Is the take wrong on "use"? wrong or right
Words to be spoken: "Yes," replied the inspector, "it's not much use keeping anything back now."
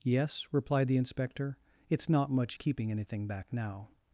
wrong